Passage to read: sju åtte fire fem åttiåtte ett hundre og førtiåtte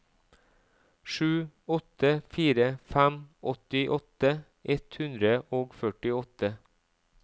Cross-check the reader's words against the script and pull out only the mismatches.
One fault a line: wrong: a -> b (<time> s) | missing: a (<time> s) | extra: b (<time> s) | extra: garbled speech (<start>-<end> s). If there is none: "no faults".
no faults